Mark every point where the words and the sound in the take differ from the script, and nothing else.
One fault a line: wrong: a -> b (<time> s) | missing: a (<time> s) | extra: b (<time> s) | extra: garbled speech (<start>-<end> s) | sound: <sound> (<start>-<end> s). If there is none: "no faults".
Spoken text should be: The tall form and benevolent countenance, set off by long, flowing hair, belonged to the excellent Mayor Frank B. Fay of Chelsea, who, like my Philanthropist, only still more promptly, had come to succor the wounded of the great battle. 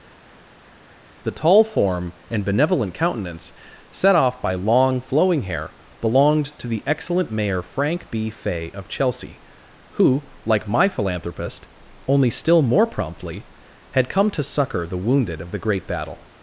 no faults